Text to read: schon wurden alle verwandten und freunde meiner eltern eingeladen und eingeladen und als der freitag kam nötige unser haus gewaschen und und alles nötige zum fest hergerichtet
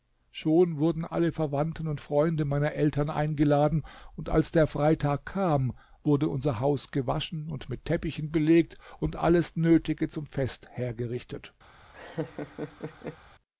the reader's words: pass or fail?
fail